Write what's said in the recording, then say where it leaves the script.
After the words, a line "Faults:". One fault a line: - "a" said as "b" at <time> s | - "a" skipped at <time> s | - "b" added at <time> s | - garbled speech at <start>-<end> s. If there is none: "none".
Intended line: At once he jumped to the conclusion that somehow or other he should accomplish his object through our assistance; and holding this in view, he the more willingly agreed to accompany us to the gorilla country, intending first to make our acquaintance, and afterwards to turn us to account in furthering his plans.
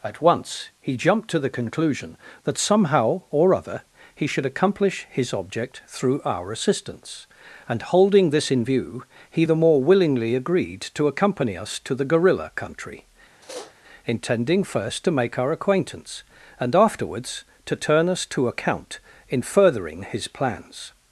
At once he jumped to the conclusion that somehow or other he should accomplish his object through our assistance; and holding this in view, he the more willingly agreed to accompany us to the gorilla country, intending first to make our acquaintance, and afterwards to turn us to account in furthering his plans.
Faults:
none